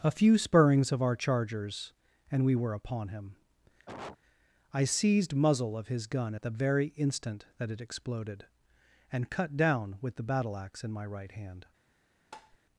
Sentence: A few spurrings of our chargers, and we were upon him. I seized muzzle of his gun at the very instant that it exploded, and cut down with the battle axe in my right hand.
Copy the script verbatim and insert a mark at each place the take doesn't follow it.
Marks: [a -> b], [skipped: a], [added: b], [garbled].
A few spurrings of our chargers, and we were upon him. I seized muzzle of his gun at the very instant that it exploded, and cut down with the battle axe in my right hand.